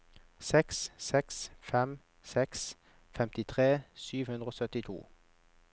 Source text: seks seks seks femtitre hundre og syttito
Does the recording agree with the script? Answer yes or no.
no